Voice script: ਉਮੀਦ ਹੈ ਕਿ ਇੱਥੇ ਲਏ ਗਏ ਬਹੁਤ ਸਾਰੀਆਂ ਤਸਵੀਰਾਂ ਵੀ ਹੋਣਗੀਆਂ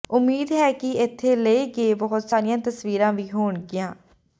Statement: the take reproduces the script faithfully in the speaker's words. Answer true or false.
true